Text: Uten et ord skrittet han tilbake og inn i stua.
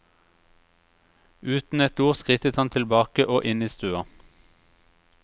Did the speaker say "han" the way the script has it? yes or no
yes